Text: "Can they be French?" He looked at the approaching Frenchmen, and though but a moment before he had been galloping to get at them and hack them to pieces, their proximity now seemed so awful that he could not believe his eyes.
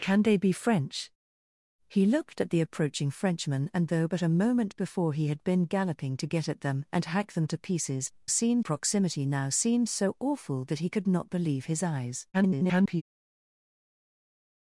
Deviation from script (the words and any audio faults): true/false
true